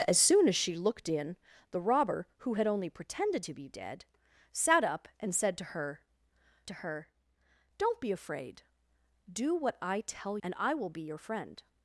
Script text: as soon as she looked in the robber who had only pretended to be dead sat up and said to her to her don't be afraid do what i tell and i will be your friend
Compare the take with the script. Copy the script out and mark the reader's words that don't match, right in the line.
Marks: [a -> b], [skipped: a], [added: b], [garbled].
as soon as she looked in the robber who had only pretended to be dead sat up and said to her to her don't be afraid do what i tell and i will be your friend